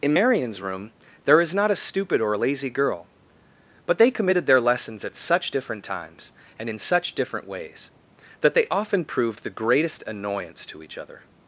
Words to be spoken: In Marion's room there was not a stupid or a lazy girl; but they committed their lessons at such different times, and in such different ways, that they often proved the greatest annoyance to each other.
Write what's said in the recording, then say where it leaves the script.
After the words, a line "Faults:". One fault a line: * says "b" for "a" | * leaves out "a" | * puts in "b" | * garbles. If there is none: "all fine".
In Marion's room there is not a stupid or a lazy girl; but they committed their lessons at such different times, and in such different ways, that they often proved the greatest annoyance to each other.
Faults:
* says "is" for "was"